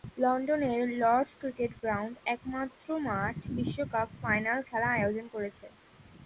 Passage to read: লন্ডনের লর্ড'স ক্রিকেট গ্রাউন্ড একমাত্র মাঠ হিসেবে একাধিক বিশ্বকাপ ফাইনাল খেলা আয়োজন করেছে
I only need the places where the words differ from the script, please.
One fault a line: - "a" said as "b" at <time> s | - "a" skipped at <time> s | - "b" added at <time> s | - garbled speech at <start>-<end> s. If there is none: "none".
- "হিসেবে একাধিক" skipped at 3.4 s